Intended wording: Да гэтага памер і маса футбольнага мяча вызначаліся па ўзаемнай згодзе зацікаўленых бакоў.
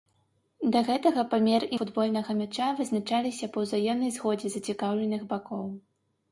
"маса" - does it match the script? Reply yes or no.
no